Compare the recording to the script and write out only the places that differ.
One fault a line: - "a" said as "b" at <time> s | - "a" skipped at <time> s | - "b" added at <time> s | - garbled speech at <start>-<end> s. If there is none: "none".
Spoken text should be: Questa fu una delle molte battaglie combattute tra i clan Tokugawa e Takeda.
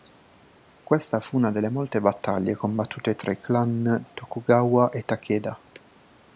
none